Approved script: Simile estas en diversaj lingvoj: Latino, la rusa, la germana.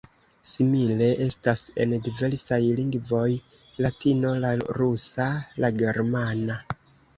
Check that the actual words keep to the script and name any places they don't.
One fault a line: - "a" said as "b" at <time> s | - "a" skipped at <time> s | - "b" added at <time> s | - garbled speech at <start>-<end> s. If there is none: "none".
none